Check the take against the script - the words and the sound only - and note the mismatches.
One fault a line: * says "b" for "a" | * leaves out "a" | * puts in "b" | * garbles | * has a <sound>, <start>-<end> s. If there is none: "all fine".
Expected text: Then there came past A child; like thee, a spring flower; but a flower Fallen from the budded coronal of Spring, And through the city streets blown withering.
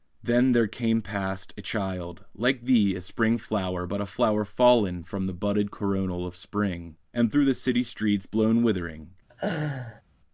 * has a laugh, 9.3-10.0 s